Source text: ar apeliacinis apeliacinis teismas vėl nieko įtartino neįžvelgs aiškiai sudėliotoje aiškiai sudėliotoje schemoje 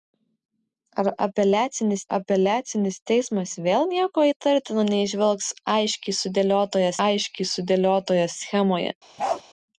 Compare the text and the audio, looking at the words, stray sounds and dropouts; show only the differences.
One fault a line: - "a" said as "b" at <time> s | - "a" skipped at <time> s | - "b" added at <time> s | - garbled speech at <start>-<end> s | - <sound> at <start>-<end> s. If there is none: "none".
- bark at 9.2-9.4 s